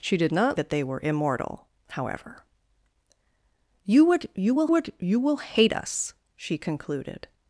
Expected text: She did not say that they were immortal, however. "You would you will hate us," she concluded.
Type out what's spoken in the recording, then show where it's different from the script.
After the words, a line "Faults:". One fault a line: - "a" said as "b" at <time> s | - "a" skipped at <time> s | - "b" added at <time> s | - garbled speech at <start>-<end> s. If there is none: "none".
She did not that they were immortal, however. "You would you will would you will hate us," she concluded.
Faults:
- "say" skipped at 0.6 s
- "would you will" added at 4.7 s